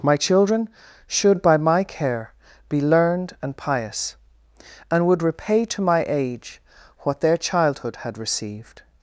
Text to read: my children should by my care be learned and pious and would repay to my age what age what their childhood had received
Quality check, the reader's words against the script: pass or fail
fail